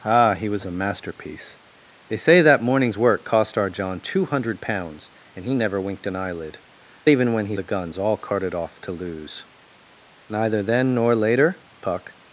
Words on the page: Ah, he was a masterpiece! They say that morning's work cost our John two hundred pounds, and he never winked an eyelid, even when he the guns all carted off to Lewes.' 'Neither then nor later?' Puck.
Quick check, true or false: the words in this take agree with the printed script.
true